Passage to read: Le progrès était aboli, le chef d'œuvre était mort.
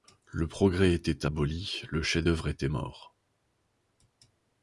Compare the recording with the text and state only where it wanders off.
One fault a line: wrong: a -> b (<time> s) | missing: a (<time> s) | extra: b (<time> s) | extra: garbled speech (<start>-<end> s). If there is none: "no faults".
no faults